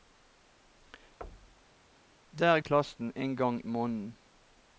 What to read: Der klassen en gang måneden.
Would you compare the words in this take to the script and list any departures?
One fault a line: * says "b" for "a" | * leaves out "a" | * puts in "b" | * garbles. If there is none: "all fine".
all fine